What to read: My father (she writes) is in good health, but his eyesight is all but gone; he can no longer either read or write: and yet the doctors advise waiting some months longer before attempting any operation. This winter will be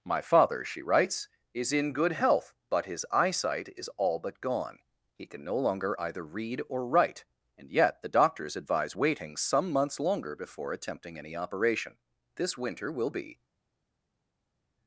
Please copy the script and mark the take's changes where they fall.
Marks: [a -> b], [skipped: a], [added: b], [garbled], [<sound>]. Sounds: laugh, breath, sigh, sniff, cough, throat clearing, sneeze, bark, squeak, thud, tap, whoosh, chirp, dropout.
My father (she writes) is in good health, but his eyesight is all but gone; he can no longer either read or write: and yet the doctors advise waiting some months longer before attempting any operation. This winter will be